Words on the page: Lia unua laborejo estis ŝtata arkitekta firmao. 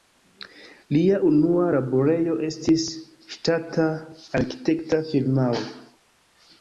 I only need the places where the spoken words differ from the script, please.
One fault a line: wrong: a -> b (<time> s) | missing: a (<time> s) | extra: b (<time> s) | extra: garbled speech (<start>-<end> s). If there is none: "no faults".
no faults